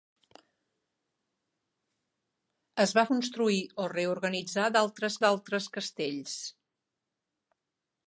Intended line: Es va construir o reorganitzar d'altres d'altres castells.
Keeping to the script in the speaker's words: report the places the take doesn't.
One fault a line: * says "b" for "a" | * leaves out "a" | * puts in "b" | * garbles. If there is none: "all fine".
all fine